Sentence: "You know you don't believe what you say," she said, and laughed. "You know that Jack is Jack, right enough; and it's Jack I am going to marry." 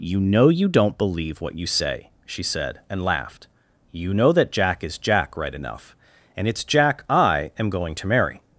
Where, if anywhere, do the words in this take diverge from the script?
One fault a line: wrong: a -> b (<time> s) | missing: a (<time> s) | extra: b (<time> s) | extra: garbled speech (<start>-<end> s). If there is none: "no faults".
no faults